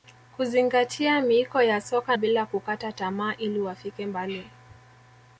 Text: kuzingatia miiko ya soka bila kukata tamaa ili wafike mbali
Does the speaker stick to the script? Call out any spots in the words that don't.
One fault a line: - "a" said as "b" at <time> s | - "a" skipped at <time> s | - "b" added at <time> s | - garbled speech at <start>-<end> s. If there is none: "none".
none